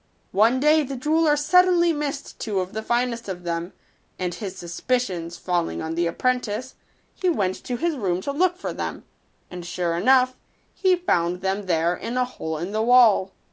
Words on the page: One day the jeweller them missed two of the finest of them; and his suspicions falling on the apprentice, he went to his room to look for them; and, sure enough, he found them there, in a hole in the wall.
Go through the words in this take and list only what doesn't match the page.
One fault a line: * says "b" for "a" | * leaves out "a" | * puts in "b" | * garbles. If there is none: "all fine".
* says "suddenly" for "them"